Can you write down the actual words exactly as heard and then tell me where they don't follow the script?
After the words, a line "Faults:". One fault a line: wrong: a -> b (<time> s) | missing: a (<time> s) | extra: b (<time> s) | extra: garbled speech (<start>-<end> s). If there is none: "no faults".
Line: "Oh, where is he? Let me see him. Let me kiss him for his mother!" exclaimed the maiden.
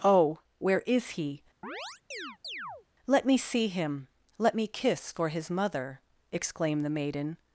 "Oh, where is he? Let me see him. Let me kiss for his mother!" exclaimed the maiden.
Faults:
missing: him (5.1 s)